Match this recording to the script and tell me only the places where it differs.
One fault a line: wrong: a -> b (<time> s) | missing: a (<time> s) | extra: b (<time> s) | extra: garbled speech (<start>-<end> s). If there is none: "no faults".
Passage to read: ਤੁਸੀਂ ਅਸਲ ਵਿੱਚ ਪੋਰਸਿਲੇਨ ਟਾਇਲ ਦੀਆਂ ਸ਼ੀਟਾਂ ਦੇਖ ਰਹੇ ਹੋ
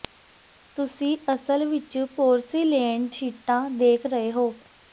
missing: ਟਾਇਲ ਦੀਆਂ (3.1 s)